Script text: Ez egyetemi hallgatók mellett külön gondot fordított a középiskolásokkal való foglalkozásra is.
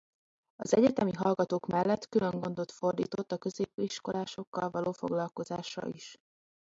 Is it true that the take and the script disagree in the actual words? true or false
true